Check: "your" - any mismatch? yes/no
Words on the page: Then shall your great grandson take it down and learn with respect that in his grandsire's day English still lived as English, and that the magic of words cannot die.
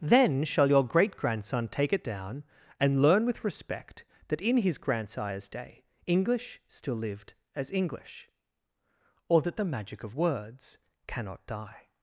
no